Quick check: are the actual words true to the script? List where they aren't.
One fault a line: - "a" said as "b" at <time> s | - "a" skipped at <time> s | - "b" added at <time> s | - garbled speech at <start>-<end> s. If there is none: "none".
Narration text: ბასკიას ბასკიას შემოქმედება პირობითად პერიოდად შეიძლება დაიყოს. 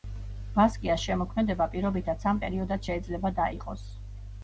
- "ბასკიას" skipped at 1.0 s
- "სამ" added at 2.3 s